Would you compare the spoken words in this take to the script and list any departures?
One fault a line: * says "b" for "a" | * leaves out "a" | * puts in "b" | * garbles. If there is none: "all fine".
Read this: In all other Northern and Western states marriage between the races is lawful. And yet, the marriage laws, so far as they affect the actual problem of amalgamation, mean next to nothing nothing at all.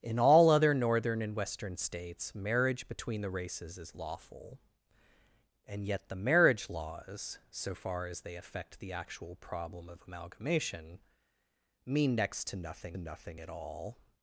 all fine